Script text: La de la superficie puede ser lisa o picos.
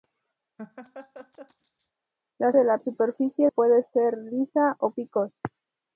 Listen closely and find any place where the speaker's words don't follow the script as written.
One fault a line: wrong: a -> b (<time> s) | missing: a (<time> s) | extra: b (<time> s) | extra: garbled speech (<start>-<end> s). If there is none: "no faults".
no faults